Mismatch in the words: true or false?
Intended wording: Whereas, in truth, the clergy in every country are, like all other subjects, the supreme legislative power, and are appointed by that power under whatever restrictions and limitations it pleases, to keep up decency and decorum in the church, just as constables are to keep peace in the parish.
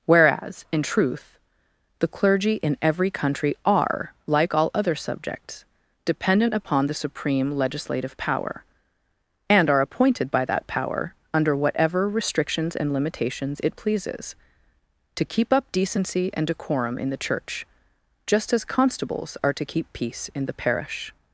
true